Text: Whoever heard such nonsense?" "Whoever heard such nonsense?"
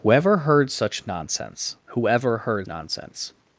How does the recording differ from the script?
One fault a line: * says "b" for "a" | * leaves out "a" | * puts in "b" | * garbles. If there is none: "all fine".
* leaves out "such"